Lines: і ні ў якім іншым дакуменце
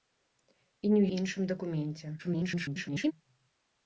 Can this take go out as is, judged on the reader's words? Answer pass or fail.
fail